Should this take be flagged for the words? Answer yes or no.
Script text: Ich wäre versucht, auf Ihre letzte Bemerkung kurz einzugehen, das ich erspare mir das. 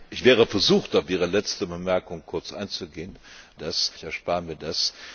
no